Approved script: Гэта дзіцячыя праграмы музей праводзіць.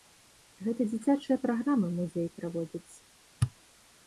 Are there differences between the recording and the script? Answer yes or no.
no